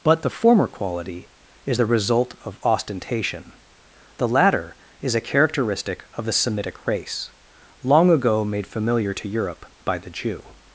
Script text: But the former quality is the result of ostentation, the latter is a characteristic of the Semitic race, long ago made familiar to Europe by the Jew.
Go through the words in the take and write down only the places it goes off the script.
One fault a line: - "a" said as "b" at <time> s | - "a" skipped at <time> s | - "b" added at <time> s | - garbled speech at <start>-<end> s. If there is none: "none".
none